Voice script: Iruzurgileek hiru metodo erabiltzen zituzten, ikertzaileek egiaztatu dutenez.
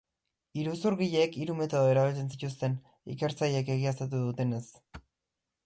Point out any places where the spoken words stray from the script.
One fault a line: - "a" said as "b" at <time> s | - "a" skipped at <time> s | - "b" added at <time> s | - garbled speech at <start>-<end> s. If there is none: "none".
none